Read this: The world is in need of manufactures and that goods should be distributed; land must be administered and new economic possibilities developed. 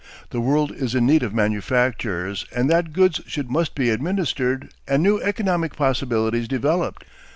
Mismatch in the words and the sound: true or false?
true